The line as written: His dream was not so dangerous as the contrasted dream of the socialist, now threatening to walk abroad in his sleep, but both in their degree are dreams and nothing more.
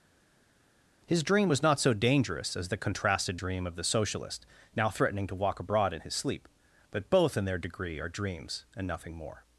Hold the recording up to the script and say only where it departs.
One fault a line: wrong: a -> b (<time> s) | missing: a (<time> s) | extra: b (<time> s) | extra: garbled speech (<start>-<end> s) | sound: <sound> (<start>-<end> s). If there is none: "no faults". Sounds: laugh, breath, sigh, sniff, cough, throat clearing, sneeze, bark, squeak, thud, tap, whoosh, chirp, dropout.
no faults